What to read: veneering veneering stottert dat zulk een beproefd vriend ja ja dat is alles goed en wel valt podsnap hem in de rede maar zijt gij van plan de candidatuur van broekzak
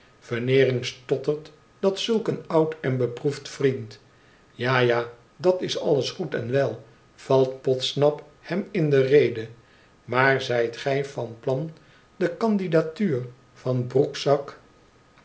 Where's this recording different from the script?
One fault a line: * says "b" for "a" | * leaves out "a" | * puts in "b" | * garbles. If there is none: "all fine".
* leaves out "veneering"
* puts in "oud en"